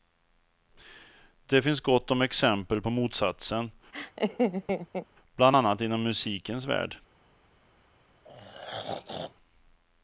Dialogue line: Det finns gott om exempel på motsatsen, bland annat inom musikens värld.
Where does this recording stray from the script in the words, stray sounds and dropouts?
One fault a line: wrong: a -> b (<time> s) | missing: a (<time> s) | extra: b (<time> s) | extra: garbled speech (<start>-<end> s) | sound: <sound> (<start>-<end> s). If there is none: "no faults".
sound: laugh (3.9-5.1 s)
sound: throat clearing (8.2-9.4 s)